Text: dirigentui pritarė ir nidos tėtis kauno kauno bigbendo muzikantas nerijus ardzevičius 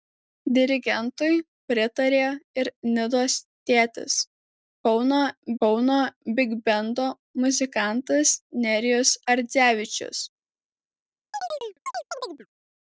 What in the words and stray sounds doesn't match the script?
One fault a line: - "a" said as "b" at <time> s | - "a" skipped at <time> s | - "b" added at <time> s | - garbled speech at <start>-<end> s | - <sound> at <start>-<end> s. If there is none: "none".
- chirp at 11.3-12.5 s